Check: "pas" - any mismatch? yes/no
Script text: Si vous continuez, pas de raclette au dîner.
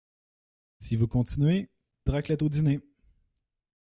yes